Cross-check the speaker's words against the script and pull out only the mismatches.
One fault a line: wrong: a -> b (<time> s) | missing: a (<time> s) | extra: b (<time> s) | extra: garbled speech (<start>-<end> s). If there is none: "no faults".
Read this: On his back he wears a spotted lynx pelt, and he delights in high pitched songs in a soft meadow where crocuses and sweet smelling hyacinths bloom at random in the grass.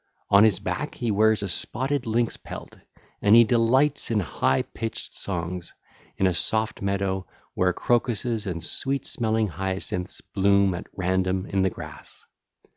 no faults